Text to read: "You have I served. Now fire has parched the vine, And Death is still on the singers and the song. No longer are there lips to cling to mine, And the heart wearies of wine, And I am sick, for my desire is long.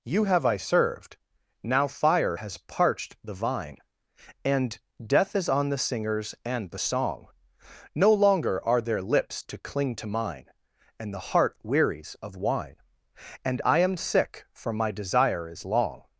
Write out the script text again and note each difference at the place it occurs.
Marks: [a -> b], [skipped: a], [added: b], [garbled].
"You have I served. Now fire has parched the vine, And Death is [skipped: still] on the singers and the song. No longer are there lips to cling to mine, And the heart wearies of wine, And I am sick, for my desire is long.